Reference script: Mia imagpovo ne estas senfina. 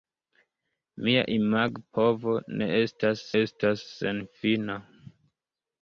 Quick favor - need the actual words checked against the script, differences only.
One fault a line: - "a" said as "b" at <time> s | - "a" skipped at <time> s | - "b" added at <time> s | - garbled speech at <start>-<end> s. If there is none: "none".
- "estas" added at 3.4 s